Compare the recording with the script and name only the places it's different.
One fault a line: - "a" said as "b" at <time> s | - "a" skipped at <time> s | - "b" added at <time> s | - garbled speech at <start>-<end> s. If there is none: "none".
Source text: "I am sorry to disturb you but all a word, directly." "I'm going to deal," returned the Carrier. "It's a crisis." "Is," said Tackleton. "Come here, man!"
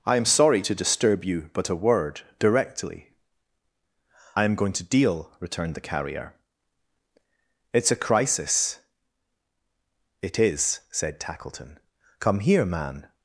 - "all" skipped at 1.7 s
- "It" added at 10.2 s